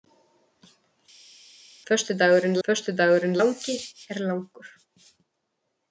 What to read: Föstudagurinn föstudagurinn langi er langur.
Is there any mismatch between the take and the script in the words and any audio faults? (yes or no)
no